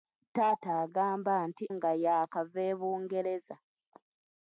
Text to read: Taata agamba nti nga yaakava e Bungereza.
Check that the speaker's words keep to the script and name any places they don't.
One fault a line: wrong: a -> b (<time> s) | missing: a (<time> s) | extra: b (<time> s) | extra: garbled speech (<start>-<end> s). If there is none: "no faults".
no faults